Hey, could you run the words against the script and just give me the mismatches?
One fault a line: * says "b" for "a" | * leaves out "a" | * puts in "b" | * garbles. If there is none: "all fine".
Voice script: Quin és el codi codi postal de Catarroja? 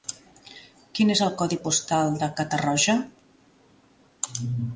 * leaves out "codi"